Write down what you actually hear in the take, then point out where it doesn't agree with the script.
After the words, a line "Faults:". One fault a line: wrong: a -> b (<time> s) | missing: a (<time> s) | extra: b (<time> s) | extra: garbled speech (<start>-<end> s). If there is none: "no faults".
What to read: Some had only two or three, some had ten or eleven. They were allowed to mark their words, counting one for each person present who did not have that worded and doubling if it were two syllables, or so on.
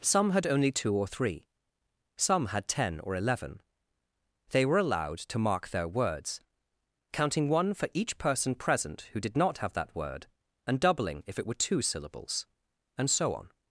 Some had only two or three, some had ten or eleven. They were allowed to mark their words, counting one for each person present who did not have that word and doubling if it were two syllables, and so on.
Faults:
wrong: worded -> word (9.9 s)
wrong: or -> and (13.0 s)